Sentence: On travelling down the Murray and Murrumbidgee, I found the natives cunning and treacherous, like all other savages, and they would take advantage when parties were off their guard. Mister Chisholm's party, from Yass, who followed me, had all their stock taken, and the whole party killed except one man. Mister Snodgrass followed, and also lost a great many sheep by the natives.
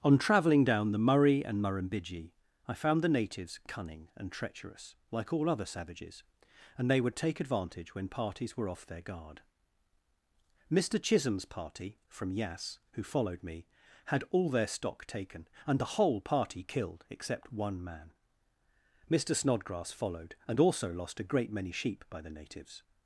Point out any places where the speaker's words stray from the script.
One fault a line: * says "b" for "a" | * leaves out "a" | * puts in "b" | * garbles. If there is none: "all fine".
all fine